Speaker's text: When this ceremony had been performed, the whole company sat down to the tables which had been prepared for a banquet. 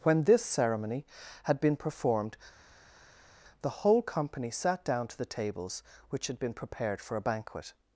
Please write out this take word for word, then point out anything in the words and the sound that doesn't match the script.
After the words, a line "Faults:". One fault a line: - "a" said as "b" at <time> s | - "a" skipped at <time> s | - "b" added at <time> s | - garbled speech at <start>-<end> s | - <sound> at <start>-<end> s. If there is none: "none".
When this ceremony had been performed, the whole company sat down to the tables which had been prepared for a banquet.
Faults:
none